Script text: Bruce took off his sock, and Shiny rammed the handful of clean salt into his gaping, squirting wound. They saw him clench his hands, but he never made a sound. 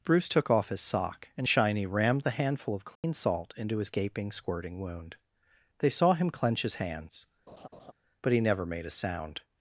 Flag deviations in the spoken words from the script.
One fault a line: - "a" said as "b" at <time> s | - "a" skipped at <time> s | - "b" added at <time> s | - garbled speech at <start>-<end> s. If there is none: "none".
none